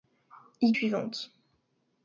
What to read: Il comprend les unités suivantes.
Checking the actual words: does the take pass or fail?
fail